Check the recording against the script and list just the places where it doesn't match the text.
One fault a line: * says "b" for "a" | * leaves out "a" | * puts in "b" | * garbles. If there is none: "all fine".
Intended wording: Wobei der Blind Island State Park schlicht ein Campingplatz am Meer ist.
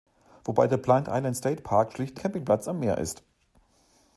* leaves out "ein"